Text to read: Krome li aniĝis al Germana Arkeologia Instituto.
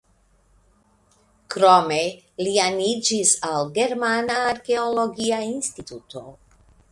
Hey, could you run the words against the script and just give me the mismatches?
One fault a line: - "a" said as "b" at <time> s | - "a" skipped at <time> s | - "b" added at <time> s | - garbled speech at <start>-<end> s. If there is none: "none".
none